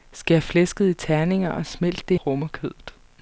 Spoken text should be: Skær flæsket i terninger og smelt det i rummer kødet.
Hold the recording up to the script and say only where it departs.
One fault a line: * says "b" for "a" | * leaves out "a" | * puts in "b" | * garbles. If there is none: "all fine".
all fine